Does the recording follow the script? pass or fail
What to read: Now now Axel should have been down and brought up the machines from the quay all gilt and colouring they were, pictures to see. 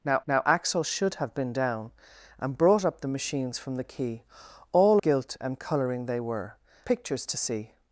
pass